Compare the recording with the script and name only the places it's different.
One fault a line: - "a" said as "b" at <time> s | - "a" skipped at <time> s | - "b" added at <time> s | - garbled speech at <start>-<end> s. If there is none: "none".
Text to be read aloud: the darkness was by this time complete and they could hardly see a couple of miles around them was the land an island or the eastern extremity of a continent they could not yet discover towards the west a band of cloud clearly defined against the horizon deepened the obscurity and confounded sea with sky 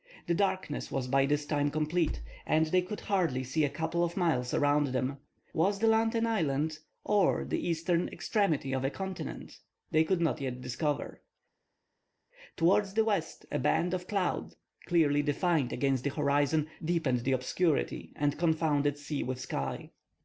none